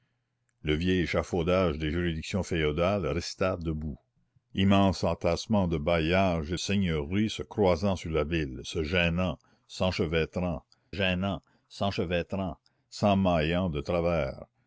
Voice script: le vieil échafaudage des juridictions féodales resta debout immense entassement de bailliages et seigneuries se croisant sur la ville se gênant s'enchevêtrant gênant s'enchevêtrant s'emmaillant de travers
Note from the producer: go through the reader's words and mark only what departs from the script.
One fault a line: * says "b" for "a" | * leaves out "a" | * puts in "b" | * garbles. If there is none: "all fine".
all fine